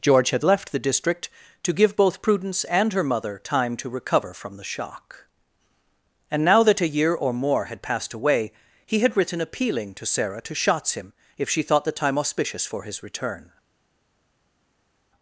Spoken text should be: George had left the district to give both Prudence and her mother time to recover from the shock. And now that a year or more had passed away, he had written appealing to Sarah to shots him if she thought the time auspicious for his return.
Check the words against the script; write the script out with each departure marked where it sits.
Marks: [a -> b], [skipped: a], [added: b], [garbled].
George had left the district to give both Prudence and her mother time to recover from the shock. And now that a year or more had passed away, he had written appealing to Sarah to shots him if she thought the time auspicious for his return.